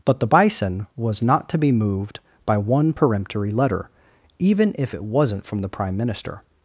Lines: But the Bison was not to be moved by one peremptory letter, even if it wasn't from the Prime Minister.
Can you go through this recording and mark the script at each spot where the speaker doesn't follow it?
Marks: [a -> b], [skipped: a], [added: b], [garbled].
But the Bison was not to be moved by one peremptory letter, even if it wasn't from the Prime Minister.